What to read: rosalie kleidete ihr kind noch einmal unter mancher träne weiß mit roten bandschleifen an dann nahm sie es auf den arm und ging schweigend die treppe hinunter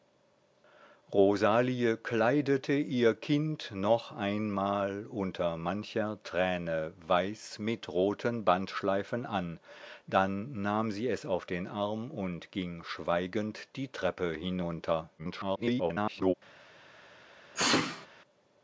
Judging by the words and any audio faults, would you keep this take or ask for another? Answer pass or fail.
fail